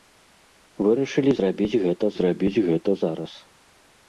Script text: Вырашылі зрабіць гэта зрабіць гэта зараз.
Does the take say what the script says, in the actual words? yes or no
yes